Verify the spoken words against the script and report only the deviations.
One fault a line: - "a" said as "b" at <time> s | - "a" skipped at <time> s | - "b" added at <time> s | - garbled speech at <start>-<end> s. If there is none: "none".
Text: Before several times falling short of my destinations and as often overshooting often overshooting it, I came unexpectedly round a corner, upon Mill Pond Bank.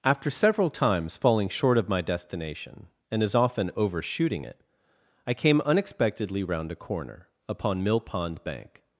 - "Before" said as "After" at 0.0 s
- "destinations" said as "destination" at 2.0 s
- "often overshooting" skipped at 4.5 s